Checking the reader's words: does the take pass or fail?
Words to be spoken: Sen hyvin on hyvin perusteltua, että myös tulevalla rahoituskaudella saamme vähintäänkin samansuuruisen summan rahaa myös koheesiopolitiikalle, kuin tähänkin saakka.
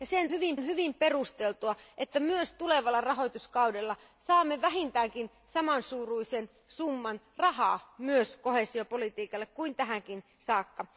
pass